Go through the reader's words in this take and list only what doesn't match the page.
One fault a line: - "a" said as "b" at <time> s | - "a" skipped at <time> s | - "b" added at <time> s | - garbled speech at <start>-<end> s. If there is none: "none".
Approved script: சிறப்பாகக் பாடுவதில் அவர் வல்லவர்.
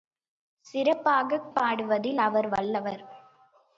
none